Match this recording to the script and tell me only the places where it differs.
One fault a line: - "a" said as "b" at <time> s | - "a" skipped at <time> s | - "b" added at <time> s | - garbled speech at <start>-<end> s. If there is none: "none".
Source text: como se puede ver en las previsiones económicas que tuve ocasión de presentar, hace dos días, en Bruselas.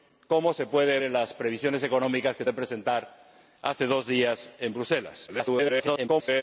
- "ver" skipped at 1.0 s
- "tuve ocasión" skipped at 2.4 s
- garbled speech at 5.3-6.4 s